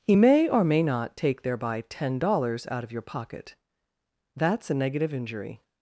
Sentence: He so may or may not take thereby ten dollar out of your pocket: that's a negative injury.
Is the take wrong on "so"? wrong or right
wrong